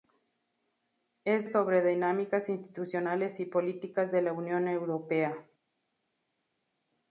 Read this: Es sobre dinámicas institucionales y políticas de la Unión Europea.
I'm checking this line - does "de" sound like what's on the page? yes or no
yes